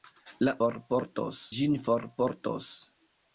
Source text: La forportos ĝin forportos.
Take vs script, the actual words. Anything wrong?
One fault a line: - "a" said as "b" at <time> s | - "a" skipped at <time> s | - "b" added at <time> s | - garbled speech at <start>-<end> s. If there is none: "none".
none